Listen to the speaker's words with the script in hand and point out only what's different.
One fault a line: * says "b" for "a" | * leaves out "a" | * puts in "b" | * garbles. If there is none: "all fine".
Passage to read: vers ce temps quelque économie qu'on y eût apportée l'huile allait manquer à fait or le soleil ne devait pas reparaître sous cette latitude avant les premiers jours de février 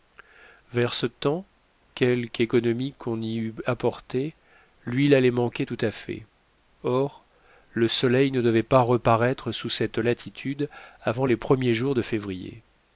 * puts in "tout"